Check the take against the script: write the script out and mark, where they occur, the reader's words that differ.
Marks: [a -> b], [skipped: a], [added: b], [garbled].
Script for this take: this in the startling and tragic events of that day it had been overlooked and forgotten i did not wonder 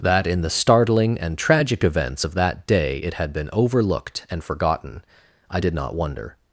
[this -> that] in the startling and tragic events of that day it had been overlooked and forgotten i did not wonder